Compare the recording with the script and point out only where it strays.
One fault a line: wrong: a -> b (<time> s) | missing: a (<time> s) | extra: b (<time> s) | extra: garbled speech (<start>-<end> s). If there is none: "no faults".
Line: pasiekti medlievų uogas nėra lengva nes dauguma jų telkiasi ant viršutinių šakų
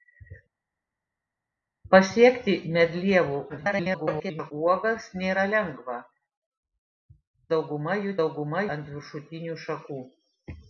extra: garbled speech (3.5-4.5 s)
missing: nes (6.0 s)
wrong: telkiasi -> dauguma (8.2 s)